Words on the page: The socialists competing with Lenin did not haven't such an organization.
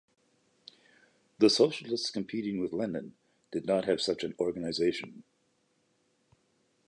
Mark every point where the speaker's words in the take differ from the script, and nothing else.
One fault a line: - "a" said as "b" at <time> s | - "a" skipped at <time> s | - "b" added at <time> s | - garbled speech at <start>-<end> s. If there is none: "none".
- "haven't" said as "have" at 3.9 s